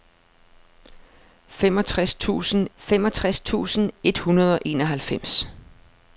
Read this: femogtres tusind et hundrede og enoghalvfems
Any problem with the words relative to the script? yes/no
yes